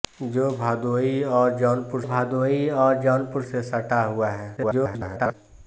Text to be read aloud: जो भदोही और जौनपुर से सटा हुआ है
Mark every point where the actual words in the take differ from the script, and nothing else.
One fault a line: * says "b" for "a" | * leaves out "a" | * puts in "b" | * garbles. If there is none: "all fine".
* puts in "भदोही और जौनपुर"
* garbles